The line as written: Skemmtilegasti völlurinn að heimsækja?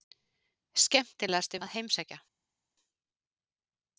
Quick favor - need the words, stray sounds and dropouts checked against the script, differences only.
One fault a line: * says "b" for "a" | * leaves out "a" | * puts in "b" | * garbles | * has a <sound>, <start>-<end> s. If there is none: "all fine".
* leaves out "völlurinn"